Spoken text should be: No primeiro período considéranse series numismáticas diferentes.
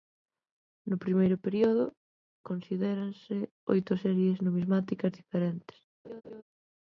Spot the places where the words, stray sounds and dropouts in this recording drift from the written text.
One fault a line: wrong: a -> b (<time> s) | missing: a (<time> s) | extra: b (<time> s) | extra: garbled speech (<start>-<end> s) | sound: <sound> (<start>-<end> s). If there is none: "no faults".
extra: oito (3.7 s)
sound: laugh (6.0-6.4 s)